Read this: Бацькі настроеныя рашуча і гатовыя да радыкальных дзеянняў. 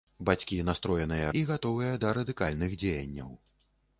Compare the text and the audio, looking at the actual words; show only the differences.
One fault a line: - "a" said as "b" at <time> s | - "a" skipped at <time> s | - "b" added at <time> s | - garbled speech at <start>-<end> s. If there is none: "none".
- "рашуча" skipped at 1.3 s